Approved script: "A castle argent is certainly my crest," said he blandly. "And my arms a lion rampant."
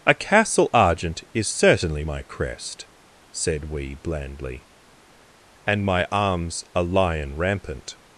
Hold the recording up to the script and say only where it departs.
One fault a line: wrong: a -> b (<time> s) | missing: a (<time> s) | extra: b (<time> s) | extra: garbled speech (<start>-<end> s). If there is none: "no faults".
wrong: he -> we (3.6 s)